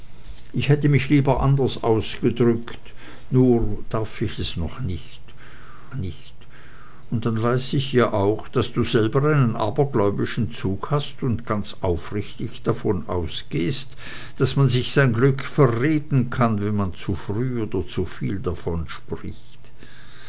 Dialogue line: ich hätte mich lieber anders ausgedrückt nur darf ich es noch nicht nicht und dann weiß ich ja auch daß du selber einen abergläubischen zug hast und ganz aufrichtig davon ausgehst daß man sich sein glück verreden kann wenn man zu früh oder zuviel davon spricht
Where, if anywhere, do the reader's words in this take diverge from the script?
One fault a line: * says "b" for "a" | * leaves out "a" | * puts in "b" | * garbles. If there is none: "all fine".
all fine